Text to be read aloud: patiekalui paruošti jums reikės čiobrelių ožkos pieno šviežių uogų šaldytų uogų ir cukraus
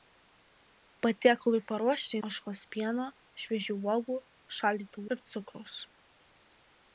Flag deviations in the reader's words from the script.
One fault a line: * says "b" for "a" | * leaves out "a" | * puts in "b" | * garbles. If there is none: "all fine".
* leaves out "jums reikės čiobrelių"
* leaves out "uogų"